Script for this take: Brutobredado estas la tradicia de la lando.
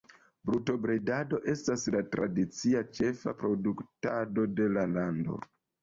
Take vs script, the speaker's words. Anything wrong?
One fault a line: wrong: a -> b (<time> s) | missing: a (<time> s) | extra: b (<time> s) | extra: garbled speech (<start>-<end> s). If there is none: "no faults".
extra: ĉefa produktado (3.0 s)